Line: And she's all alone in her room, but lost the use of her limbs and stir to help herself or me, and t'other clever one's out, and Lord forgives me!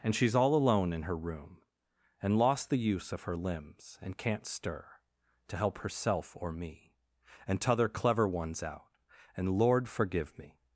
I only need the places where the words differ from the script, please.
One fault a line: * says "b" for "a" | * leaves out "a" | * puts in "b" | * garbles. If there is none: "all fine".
* says "and" for "but"
* puts in "can't"
* says "forgive" for "forgives"